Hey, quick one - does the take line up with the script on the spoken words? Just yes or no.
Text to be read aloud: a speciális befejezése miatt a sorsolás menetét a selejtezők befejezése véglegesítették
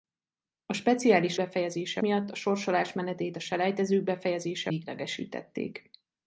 yes